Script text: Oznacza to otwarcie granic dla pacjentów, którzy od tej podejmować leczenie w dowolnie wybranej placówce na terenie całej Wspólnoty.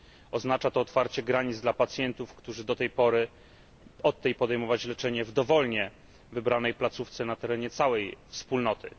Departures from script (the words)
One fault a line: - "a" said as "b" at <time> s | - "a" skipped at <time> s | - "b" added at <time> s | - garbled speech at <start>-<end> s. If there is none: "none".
none